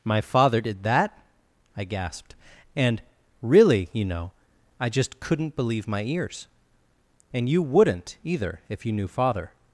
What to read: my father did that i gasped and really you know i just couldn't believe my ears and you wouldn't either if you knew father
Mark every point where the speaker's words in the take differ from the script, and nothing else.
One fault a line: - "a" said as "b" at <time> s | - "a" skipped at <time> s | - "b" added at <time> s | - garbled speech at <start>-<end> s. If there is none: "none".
none